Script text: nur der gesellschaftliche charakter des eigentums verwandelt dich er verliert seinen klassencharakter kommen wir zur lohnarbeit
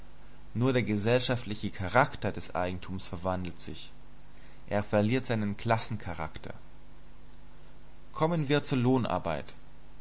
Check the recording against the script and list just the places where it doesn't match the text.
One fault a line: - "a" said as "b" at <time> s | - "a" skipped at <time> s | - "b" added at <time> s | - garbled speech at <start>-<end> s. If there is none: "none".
- "dich" said as "sich" at 3.6 s